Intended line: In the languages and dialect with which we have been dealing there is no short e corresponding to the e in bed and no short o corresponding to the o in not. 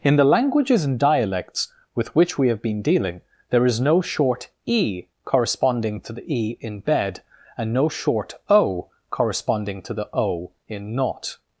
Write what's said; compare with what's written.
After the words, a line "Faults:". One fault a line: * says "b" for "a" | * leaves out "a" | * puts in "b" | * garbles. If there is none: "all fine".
In the languages and dialects with which we have been dealing there is no short e corresponding to the e in bed and no short o corresponding to the o in not.
Faults:
* says "dialects" for "dialect"